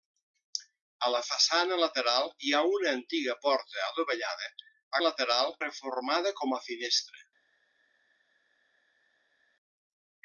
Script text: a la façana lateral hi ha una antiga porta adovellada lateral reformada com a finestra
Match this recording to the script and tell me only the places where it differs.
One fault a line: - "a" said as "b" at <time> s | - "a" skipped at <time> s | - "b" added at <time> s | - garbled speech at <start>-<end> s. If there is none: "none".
none